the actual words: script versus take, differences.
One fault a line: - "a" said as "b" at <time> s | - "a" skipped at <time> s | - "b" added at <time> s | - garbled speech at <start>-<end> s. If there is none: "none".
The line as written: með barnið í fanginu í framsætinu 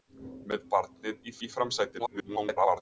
- "fanginu" skipped at 1.4 s
- garbled speech at 2.0-2.8 s